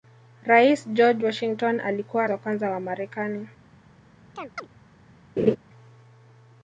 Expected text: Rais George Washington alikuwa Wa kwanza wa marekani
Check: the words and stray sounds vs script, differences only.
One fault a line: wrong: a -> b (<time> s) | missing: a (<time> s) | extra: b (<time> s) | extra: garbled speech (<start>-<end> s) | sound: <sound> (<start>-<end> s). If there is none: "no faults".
sound: chirp (4.3-4.7 s)
sound: laugh (5.4-5.6 s)